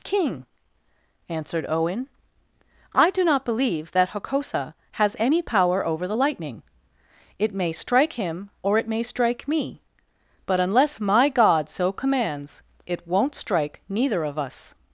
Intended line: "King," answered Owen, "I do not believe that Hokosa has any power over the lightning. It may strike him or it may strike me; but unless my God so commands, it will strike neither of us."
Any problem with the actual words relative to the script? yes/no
yes